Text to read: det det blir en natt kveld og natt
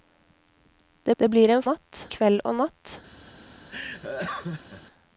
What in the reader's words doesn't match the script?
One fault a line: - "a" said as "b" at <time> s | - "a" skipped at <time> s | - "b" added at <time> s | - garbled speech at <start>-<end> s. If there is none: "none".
none